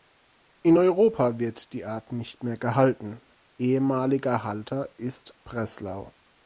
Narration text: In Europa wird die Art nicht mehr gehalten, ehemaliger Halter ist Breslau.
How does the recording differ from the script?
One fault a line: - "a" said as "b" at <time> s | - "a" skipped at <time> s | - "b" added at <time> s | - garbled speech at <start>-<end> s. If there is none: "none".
none